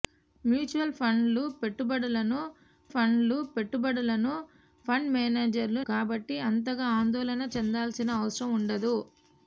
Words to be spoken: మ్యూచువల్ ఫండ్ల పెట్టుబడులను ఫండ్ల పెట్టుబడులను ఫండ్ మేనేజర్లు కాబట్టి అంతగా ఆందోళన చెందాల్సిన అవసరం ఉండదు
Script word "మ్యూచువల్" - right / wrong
right